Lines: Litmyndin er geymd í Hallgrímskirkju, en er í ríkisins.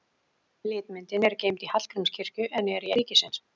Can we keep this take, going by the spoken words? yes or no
yes